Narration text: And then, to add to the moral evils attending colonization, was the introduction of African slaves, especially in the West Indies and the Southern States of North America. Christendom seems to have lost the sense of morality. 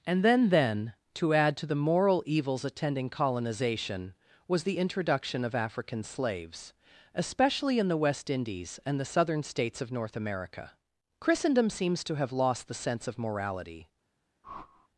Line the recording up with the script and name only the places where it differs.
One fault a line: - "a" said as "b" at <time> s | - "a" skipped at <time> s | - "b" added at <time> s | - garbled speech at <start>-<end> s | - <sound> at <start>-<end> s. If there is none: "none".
- "then" added at 0.5 s
- whoosh at 14.4-14.9 s